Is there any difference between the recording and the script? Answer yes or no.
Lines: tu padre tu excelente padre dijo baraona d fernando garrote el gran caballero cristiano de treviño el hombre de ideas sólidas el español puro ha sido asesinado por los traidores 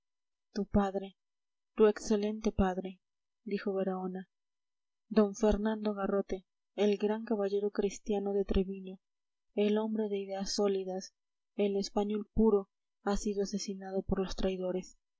no